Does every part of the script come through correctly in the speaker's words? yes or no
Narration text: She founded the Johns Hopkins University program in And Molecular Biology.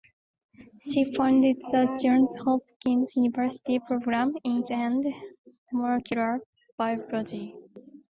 yes